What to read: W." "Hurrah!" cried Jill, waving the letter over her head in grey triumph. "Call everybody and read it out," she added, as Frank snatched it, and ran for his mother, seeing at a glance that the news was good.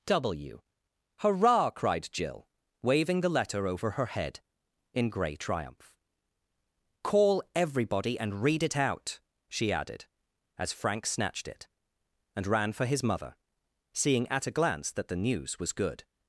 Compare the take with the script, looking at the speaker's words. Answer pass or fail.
pass